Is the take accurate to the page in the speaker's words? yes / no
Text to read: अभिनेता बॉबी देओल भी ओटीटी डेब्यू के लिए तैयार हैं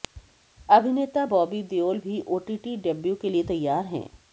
yes